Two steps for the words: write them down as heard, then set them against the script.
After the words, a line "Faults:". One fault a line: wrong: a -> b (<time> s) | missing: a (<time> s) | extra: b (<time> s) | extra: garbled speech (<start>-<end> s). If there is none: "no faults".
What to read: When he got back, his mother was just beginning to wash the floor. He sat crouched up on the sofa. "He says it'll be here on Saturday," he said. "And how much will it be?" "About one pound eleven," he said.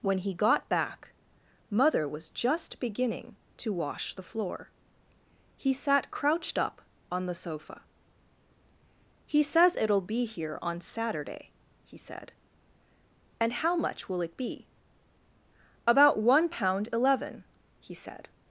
When he got back, mother was just beginning to wash the floor. He sat crouched up on the sofa. "He says it'll be here on Saturday," he said. "And how much will it be?" "About one pound eleven," he said.
Faults:
missing: his (1.1 s)